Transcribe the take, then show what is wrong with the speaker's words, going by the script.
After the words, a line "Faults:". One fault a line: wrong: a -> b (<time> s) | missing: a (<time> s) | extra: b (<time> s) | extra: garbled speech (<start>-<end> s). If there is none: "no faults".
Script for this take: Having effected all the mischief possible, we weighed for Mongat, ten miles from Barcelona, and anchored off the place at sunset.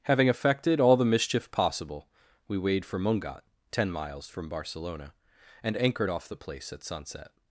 Having effected all the mischief possible, we weighed for Mongat, ten miles from Barcelona, and anchored off the place at sunset.
Faults:
no faults